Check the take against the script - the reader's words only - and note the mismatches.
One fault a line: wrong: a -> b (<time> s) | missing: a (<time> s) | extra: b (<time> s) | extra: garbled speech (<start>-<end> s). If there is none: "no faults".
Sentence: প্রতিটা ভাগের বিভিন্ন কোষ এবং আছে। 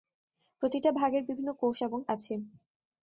no faults